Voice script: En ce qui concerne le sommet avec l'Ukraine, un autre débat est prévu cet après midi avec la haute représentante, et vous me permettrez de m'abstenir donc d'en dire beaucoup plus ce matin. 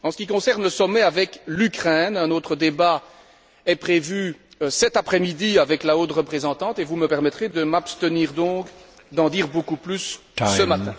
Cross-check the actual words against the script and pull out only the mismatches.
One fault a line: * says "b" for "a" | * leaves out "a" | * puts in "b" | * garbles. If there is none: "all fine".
all fine